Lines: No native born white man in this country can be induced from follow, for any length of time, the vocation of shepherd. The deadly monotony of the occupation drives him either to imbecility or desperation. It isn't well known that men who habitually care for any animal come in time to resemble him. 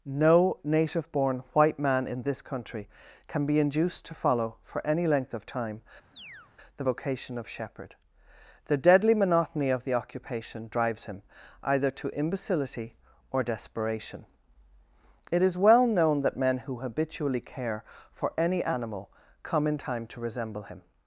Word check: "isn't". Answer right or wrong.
wrong